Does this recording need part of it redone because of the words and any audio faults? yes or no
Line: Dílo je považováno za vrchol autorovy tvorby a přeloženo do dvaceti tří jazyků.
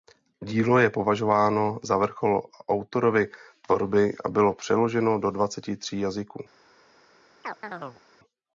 yes